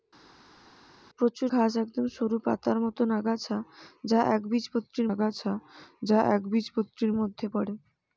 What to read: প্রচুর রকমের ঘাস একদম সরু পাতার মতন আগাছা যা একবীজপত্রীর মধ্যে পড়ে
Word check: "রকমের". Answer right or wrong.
wrong